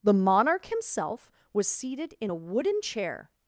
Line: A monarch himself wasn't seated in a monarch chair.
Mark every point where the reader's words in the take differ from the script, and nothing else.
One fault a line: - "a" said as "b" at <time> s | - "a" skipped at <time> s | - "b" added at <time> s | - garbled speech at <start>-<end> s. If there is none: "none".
- "A" said as "The" at 0.0 s
- "wasn't" said as "was" at 1.5 s
- "monarch" said as "wooden" at 2.3 s